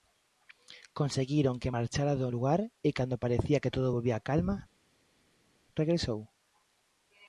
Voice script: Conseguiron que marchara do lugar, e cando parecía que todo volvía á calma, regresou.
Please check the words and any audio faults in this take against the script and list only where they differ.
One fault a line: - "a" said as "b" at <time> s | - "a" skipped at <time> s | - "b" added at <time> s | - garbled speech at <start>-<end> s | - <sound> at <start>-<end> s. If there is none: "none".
none